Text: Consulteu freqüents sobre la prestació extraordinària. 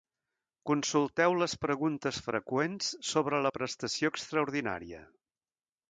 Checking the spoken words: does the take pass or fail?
fail